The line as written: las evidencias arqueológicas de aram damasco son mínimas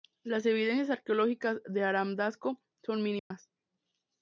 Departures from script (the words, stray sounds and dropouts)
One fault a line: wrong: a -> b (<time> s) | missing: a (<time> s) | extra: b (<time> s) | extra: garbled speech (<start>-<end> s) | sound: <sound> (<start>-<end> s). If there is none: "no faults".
sound: dropout (3.2-3.3 s)